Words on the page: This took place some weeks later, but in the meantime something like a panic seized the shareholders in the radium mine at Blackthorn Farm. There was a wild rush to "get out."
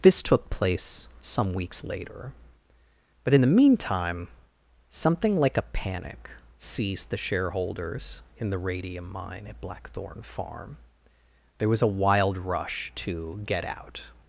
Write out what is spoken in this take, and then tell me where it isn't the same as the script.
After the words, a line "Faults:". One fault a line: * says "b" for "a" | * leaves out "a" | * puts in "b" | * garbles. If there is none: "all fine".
This took place some weeks later, but in the meantime something like a panic seized the shareholders in the radium mine at Blackthorn Farm. There was a wild rush to "get out."
Faults:
all fine